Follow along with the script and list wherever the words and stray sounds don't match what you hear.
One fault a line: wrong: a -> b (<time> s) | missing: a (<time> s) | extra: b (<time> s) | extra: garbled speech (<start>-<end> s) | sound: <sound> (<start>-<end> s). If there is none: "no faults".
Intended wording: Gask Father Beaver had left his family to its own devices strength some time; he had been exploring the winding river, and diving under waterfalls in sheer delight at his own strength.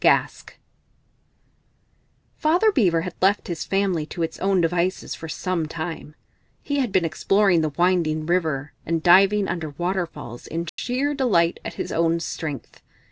wrong: strength -> for (5.1 s)
sound: dropout (10.7-10.8 s)